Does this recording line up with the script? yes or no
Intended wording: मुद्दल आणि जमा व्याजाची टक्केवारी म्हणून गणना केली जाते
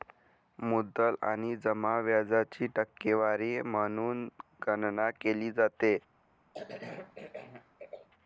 yes